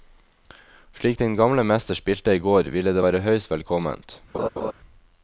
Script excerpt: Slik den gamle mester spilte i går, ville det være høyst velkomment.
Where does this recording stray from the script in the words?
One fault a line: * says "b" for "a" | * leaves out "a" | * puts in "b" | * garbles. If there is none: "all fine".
all fine